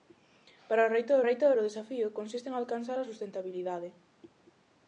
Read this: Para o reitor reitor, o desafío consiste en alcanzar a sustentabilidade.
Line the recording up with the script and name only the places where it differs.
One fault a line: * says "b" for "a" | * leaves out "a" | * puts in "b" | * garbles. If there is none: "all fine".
all fine